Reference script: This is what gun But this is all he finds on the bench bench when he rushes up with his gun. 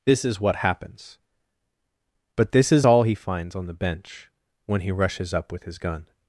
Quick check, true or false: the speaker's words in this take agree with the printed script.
false